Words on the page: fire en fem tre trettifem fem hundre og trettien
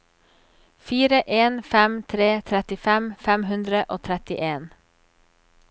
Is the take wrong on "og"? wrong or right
right